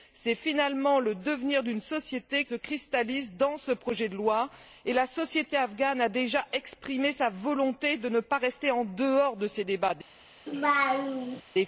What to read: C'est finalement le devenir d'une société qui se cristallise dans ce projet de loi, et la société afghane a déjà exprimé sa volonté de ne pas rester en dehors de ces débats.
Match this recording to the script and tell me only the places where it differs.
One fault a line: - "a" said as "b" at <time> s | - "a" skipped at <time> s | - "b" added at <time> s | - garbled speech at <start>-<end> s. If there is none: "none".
- "qui" skipped at 2.4 s